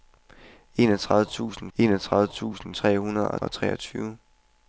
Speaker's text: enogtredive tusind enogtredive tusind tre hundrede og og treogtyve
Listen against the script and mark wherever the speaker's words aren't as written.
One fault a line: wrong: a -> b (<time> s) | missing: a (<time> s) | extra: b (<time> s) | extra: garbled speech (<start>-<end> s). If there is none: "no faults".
no faults